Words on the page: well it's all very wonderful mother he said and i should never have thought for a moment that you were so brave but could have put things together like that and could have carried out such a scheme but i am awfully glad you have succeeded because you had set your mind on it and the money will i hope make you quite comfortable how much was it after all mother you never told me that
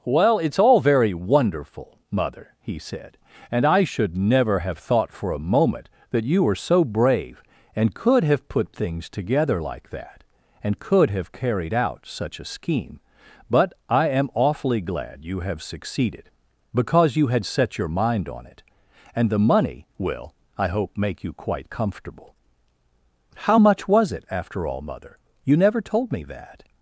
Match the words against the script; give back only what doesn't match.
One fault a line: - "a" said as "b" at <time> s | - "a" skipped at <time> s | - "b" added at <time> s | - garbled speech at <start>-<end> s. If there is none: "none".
- "but" said as "and" at 7.8 s